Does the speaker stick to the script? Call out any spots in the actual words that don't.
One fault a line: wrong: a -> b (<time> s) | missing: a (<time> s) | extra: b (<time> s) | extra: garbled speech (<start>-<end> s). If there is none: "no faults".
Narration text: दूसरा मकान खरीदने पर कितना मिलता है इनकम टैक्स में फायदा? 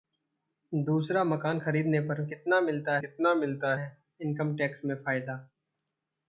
extra: कितना मिलता (3.0 s)